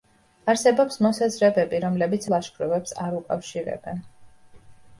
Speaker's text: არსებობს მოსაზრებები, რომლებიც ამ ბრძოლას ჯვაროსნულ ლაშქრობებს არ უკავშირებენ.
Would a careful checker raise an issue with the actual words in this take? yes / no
yes